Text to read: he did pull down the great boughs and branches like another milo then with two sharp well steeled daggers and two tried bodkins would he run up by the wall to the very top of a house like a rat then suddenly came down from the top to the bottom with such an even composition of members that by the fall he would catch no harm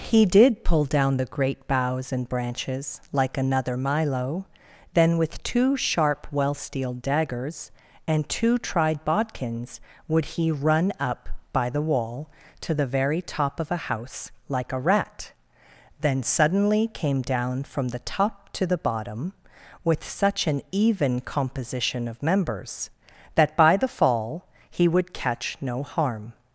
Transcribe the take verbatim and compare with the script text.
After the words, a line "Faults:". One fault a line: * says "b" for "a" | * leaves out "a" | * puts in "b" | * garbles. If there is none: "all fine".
he did pull down the great boughs and branches like another milo then with two sharp well steeled daggers and two tried bodkins would he run up by the wall to the very top of a house like a rat then suddenly came down from the top to the bottom with such an even composition of members that by the fall he would catch no harm
Faults:
all fine